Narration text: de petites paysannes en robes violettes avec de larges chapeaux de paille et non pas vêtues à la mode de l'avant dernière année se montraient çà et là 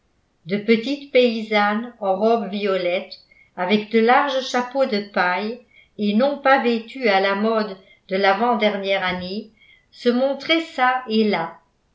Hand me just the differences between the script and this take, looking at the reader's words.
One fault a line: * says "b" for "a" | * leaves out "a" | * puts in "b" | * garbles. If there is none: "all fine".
all fine